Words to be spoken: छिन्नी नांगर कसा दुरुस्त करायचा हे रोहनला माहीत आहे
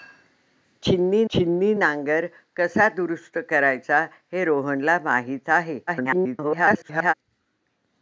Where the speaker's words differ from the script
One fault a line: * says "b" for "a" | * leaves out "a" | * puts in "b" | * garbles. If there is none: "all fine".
* puts in "छिन्नी"
* garbles